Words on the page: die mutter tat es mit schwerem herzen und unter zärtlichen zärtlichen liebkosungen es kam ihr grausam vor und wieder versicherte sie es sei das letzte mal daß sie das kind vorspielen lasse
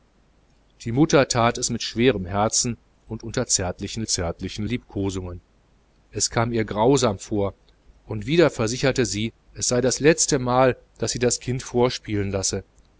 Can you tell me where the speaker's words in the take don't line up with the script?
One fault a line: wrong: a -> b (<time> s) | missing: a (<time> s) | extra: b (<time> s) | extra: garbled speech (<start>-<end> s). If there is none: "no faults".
no faults